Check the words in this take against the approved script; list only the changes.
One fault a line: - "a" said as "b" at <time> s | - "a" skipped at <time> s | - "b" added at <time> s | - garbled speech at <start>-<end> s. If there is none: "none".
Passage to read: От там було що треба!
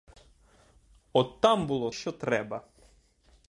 none